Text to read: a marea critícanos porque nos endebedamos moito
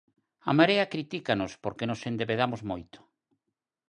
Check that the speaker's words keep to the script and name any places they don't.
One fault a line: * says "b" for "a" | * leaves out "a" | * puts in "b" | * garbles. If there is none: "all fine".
all fine